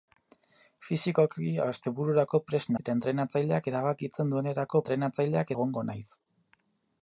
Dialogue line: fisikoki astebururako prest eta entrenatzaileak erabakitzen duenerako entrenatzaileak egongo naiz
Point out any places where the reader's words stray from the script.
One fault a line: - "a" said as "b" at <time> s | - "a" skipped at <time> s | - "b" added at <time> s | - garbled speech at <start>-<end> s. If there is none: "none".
none